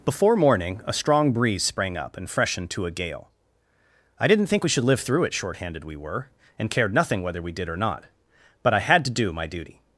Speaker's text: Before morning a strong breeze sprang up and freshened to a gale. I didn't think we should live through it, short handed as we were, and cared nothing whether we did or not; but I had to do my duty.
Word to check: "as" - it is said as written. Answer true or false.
false